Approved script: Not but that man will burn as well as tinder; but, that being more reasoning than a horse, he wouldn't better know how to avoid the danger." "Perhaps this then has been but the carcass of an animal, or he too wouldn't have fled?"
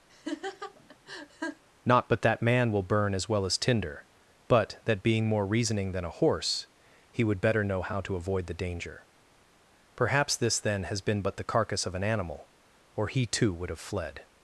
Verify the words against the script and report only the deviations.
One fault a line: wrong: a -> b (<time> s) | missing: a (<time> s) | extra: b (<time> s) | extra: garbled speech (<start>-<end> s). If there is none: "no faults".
wrong: wouldn't -> would (7.2 s)
wrong: wouldn't -> would (13.5 s)